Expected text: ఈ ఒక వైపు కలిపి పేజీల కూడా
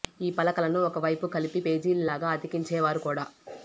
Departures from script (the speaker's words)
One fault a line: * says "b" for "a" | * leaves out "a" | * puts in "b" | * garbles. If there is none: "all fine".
* puts in "పలకలను"
* puts in "లాగా అతికించేవారు"